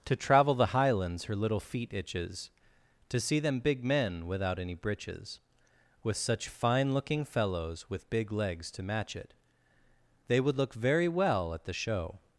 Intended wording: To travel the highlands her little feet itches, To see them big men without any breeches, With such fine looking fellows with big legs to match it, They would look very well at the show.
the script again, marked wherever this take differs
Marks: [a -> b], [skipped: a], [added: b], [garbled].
To travel the highlands her little feet itches, To see them big men without any breeches, With such fine looking fellows with big legs to match it, They would look very well at the show.